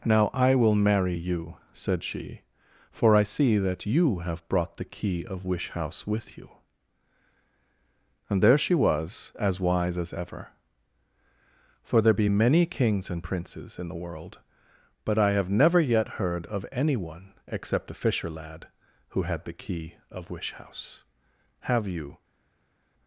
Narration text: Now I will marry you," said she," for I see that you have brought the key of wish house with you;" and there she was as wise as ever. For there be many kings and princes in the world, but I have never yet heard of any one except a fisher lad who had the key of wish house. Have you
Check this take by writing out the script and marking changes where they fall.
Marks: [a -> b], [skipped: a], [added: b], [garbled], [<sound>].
Now I will marry you," said she," for I see that you have brought the key of wish house with you;" and there she was as wise as ever. For there be many kings and princes in the world, but I have never yet heard of any one except a fisher lad who had the key of wish house. Have you